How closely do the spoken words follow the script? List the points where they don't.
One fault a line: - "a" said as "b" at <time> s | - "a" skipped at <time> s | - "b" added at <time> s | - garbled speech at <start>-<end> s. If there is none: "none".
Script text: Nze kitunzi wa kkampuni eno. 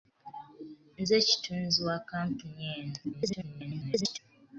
- garbled speech at 3.0-4.2 s